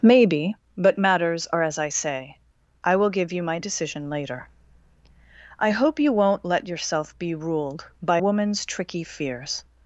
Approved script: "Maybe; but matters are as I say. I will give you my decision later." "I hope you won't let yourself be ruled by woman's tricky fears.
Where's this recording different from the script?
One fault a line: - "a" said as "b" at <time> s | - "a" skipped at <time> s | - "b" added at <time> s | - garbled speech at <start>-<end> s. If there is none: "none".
none